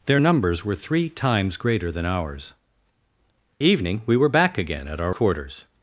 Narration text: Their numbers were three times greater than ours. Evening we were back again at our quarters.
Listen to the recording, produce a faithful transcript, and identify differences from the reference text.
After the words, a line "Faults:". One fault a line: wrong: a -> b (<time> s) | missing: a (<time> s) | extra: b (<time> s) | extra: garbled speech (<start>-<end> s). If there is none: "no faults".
Their numbers were three times greater than ours. Evening we were back again at our quarters.
Faults:
no faults